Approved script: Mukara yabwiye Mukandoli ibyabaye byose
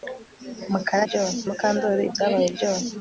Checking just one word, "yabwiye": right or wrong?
wrong